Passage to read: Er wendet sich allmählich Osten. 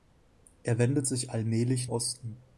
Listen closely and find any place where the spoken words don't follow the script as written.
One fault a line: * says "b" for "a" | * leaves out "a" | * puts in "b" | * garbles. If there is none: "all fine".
all fine